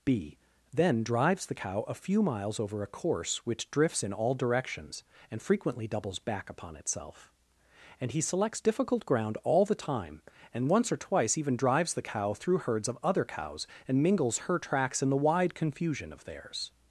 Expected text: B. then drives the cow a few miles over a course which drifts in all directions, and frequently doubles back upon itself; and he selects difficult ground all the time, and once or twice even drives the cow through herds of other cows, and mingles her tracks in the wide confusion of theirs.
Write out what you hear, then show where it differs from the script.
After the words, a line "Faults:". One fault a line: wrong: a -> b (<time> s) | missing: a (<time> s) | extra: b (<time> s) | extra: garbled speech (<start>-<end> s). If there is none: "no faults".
B. then drives the cow a few miles over a course which drifts in all directions, and frequently doubles back upon itself; and he selects difficult ground all the time, and once or twice even drives the cow through herds of other cows, and mingles her tracks in the wide confusion of theirs.
Faults:
no faults